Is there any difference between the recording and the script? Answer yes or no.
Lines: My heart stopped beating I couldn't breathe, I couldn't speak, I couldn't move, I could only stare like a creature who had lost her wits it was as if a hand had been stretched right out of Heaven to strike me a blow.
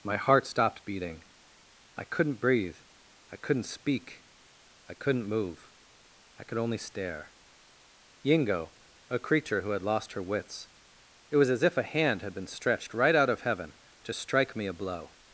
yes